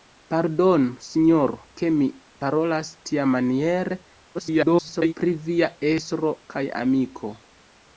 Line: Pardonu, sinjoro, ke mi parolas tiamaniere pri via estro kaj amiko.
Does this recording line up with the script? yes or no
no